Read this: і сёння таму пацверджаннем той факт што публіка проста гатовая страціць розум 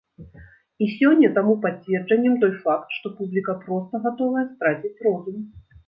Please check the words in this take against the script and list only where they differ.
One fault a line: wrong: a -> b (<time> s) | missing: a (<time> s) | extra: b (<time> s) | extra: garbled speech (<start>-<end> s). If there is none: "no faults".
no faults